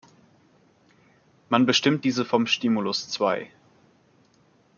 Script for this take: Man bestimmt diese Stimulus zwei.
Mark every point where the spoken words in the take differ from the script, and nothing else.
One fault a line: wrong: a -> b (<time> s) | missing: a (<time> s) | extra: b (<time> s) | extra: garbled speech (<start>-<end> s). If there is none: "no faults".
extra: vom (2.2 s)